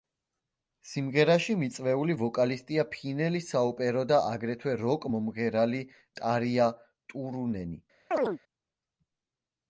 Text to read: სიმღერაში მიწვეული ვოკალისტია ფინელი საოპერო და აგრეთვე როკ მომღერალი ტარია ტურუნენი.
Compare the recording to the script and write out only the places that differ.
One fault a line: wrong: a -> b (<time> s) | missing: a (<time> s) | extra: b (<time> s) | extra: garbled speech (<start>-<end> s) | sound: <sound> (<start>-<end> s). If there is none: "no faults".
sound: chirp (8.1-8.4 s)